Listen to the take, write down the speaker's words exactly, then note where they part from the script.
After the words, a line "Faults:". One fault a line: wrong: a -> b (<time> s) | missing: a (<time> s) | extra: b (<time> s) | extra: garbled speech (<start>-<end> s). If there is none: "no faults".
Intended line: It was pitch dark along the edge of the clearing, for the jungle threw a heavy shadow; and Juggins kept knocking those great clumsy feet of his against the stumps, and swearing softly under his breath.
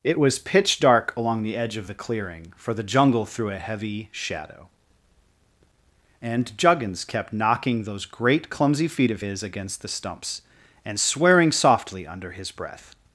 It was pitch dark along the edge of the clearing, for the jungle threw a heavy shadow; and Juggins kept knocking those great clumsy feet of his against the stumps, and swearing softly under his breath.
Faults:
no faults